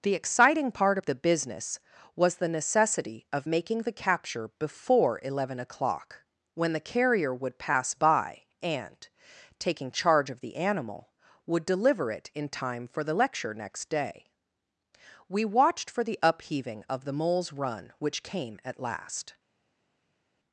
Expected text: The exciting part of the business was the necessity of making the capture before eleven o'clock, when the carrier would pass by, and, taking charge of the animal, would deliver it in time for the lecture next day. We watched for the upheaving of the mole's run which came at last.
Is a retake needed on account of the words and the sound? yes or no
no